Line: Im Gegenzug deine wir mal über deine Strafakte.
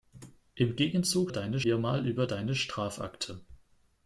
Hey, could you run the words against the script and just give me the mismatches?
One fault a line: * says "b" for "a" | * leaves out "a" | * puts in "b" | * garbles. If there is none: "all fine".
all fine